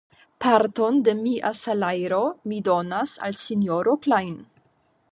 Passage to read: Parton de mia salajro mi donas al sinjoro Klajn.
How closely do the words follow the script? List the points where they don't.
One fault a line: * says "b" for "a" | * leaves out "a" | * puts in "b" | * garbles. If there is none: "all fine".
all fine